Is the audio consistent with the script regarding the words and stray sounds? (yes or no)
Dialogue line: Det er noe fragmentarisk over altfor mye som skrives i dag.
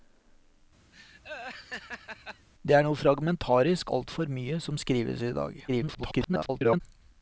no